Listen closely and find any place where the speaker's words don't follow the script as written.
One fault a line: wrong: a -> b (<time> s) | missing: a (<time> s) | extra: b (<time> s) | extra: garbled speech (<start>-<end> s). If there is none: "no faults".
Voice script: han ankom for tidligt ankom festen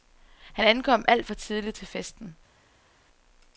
extra: alt (1.1 s)
wrong: ankom -> til (1.7 s)